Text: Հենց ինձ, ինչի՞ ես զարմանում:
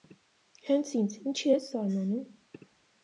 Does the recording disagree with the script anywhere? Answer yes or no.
no